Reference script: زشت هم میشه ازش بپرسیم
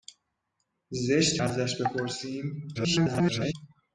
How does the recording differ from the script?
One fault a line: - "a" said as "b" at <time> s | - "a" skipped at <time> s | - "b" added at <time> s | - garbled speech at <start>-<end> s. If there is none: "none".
- "هم میشه" skipped at 1.4 s
- garbled speech at 2.7-3.5 s